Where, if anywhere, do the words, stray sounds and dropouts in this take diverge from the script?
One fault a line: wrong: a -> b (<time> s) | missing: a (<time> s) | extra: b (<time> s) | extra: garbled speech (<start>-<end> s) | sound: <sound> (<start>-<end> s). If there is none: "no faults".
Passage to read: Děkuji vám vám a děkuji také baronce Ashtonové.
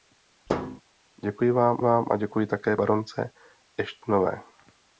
sound: thud (0.5-0.8 s)